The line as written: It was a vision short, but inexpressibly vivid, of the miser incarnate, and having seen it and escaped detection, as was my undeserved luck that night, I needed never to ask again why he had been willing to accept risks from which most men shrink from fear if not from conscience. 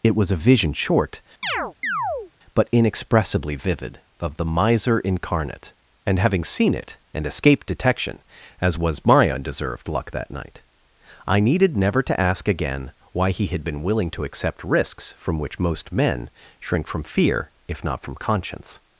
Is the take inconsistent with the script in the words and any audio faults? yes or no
yes